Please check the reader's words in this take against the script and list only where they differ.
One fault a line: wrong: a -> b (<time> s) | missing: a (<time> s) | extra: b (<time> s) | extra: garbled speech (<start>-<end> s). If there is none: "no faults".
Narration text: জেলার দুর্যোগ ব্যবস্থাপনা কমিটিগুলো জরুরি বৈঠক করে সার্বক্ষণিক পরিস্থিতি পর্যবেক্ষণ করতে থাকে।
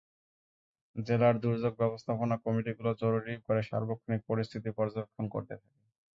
missing: বৈঠক (3.3 s)